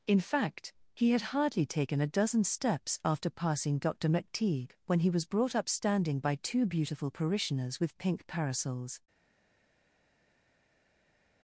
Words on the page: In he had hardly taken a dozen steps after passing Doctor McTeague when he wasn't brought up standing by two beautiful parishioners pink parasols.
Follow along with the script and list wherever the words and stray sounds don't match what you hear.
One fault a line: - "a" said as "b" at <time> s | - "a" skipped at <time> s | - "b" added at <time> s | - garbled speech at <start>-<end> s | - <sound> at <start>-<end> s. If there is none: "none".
- "fact" added at 0.2 s
- "wasn't" said as "was" at 5.1 s
- "with" added at 7.8 s